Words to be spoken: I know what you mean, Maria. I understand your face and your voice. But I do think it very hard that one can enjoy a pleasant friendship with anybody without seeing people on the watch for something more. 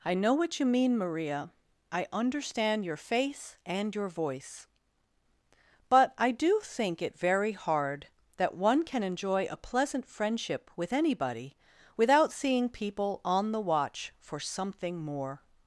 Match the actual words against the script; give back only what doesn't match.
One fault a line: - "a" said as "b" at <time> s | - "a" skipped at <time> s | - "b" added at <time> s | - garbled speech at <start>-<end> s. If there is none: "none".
none